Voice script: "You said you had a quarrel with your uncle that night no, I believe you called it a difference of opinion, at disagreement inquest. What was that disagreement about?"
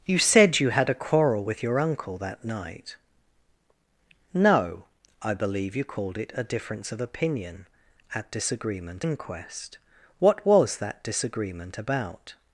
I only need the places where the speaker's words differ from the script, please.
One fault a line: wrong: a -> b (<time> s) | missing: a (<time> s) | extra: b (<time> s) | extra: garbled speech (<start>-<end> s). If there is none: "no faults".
no faults